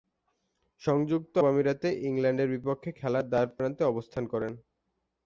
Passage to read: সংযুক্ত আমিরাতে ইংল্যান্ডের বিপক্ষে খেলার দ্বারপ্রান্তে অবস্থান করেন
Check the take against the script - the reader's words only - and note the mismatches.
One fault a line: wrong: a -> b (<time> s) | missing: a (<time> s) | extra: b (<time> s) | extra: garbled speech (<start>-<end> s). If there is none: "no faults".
no faults